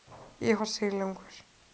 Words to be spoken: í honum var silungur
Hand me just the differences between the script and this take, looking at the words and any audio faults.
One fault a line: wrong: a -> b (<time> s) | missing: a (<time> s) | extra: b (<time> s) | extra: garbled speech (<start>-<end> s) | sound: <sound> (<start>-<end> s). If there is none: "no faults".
missing: honum (0.6 s)